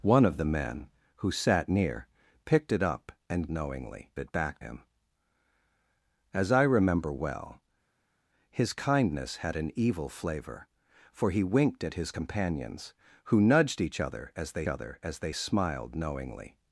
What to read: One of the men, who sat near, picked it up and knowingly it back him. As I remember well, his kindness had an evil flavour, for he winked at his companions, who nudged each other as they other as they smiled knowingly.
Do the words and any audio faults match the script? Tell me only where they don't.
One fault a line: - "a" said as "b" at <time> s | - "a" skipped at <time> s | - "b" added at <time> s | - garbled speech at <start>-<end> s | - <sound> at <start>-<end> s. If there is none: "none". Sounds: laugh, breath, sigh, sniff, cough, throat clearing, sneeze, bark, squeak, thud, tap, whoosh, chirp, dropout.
none